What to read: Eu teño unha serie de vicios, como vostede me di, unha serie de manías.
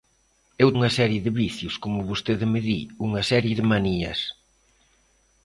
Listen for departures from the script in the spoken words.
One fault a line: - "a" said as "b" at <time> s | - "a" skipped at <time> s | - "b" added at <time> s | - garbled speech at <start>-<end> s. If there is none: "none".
- "teño" skipped at 0.7 s